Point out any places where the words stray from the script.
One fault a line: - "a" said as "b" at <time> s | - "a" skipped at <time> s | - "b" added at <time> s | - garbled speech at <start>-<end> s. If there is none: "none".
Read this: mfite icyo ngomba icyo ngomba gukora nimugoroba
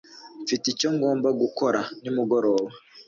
- "icyo ngomba" skipped at 1.3 s